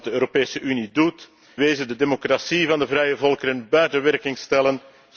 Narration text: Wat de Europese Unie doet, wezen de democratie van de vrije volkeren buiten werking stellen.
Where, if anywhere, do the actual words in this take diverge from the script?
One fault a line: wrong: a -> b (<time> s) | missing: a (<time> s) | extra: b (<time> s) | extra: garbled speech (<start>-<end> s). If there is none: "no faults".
no faults